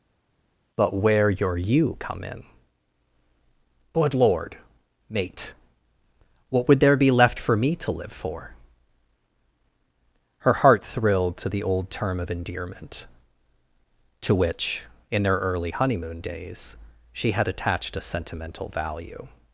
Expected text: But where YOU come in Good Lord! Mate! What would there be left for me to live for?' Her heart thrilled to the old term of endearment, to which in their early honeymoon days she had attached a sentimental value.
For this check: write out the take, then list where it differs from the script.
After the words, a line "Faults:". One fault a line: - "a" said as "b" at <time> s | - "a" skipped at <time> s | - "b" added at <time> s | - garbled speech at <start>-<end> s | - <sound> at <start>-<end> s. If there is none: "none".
But where your YOU come in Good Lord! Mate! What would there be left for me to live for?' Her heart thrilled to the old term of endearment, to which in their early honeymoon days she had attached a sentimental value.
Faults:
- "your" added at 1.3 s